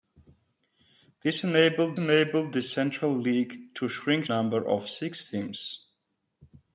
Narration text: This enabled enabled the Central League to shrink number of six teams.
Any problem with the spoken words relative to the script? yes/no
no